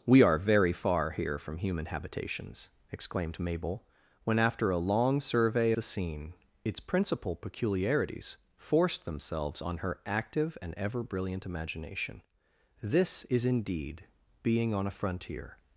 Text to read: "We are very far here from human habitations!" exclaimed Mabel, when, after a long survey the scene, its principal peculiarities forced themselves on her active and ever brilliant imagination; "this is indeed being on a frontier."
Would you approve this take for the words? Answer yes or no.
yes